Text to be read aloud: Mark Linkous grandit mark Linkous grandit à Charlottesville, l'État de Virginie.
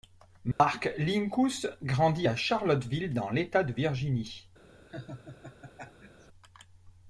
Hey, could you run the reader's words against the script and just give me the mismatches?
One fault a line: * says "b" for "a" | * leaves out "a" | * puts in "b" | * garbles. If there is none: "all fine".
* leaves out "mark Linkous grandit"
* puts in "dans"